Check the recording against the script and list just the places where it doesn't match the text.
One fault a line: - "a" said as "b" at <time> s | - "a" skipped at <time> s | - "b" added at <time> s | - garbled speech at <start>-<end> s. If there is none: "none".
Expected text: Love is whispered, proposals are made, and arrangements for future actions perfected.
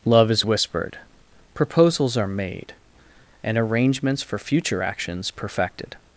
none